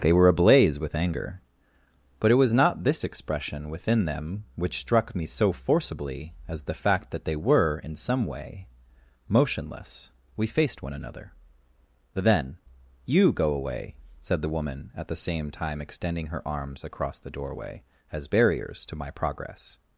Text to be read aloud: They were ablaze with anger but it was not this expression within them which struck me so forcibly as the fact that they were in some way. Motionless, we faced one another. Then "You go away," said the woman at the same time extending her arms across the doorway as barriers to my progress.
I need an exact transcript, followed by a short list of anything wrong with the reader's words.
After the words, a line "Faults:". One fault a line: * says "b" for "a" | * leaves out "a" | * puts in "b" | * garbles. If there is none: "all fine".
They were ablaze with anger but it was not this expression within them which struck me so forcibly as the fact that they were in some way. Motionless, we faced one another. Then "You go away," said the woman at the same time extending her arms across the doorway as barriers to my progress.
Faults:
all fine